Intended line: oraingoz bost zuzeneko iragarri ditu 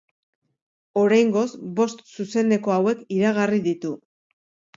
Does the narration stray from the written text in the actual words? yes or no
yes